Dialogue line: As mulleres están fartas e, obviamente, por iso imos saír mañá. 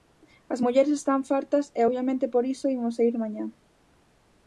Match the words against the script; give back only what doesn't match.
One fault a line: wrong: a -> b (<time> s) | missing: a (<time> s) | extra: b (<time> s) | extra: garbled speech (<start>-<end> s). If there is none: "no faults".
no faults